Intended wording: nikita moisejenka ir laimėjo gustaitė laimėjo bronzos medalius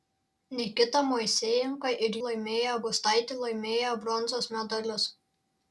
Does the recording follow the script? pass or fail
pass